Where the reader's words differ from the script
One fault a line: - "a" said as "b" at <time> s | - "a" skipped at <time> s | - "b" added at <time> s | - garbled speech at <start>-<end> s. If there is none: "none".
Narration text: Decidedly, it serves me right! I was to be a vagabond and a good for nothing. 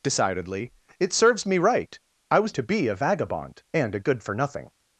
none